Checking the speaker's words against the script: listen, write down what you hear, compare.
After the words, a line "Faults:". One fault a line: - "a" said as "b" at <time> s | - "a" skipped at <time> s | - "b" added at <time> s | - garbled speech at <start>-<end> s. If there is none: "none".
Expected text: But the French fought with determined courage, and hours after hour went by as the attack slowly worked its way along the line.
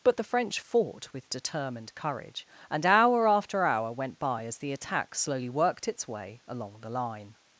But the French fought with determined courage, and hour after hour went by as the attack slowly worked its way along the line.
Faults:
- "hours" said as "hour" at 2.9 s